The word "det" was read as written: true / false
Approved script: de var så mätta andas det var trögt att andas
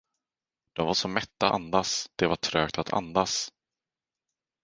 true